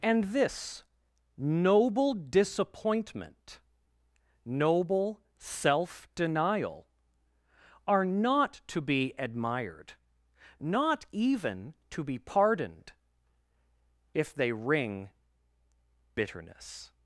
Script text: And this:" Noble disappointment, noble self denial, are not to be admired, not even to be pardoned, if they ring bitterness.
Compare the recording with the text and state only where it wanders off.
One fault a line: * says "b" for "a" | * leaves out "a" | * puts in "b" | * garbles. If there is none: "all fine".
all fine